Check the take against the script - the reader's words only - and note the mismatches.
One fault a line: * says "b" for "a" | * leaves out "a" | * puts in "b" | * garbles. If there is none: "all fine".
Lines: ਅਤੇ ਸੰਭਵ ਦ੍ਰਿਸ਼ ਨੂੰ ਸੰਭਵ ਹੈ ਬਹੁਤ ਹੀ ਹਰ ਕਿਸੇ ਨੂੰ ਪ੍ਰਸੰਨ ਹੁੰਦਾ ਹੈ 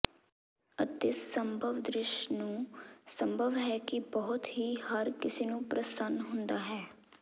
* puts in "ਕਿ"